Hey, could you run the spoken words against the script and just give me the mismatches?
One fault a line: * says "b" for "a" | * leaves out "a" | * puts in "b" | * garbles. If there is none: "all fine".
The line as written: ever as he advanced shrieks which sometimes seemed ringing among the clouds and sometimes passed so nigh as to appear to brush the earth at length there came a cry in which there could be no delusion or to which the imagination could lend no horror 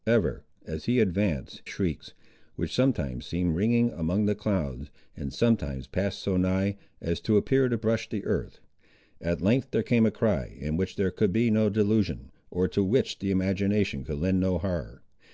all fine